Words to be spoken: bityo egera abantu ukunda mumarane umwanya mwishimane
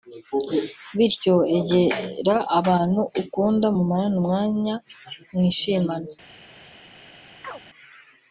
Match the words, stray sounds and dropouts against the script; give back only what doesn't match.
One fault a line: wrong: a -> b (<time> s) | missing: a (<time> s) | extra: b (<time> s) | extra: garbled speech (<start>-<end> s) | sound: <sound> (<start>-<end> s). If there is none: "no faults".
sound: chirp (7.4-7.6 s)